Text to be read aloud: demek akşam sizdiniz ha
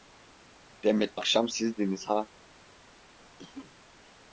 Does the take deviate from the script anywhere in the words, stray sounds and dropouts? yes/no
yes